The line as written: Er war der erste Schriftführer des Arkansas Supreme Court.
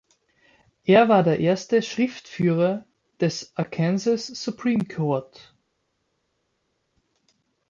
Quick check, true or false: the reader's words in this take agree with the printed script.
true